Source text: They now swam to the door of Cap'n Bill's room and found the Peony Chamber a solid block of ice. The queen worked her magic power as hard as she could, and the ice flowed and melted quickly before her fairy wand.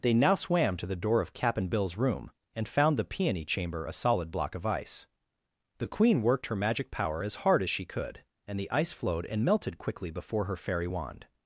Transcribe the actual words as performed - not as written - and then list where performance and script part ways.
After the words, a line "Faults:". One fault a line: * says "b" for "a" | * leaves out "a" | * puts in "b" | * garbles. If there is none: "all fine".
They now swam to the door of Cap'n Bill's room and found the Peony Chamber a solid block of ice. The queen worked her magic power as hard as she could, and the ice flowed and melted quickly before her fairy wand.
Faults:
all fine